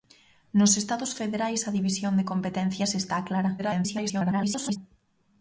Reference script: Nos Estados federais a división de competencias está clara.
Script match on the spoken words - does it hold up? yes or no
no